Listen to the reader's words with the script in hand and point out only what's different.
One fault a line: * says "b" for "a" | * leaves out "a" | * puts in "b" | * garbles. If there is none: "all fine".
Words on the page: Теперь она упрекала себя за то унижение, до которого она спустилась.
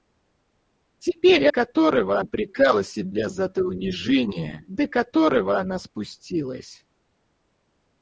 * says "которого" for "она"